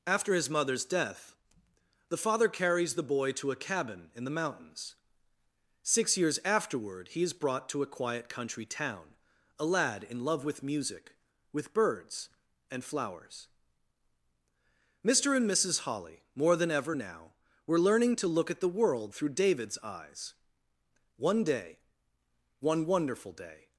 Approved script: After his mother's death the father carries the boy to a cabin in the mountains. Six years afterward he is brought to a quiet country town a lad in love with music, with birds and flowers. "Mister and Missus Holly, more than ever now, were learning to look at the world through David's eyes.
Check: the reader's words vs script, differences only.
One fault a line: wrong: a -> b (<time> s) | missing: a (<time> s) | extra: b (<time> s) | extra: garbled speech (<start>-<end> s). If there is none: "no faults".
extra: One day one wonderful day (21.1 s)